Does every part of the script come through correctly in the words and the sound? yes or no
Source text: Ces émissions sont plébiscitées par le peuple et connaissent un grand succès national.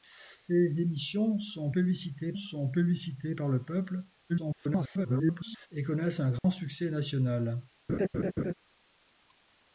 no